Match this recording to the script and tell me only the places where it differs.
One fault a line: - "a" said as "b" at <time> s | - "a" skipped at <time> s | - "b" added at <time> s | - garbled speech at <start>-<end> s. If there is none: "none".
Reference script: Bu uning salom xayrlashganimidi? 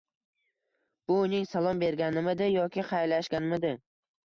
- "berganimidi yoki" added at 1.9 s